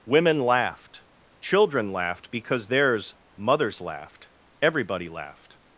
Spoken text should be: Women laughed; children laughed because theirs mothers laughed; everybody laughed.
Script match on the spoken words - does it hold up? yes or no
yes